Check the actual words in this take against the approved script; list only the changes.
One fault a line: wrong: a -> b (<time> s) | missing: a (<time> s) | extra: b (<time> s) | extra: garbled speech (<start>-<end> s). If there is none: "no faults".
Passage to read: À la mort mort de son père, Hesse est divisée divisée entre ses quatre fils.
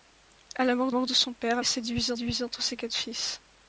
no faults